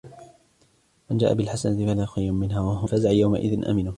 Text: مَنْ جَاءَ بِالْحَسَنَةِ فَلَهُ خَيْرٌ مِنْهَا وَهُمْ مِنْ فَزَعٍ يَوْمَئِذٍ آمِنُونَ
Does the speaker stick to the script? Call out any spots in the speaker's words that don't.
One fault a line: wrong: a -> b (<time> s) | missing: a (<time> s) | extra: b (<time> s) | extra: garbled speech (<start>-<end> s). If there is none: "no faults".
missing: مِنْ (2.9 s)